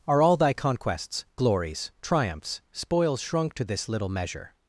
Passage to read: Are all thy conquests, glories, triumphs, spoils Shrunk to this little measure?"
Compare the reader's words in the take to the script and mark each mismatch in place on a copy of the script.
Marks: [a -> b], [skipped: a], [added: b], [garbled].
Are all thy conquests, glories, triumphs, spoils Shrunk to this little measure?"